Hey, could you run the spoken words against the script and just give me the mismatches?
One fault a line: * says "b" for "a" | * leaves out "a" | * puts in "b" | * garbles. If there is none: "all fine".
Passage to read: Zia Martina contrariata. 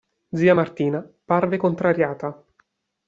* puts in "parve"